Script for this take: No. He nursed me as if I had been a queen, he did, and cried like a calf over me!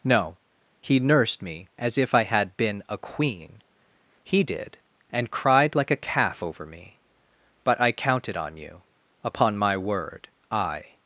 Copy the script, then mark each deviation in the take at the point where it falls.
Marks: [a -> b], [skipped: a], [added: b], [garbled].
No. He nursed me as if I had been a queen, he did, and cried like a calf over me! [added: But I counted on you upon my word I]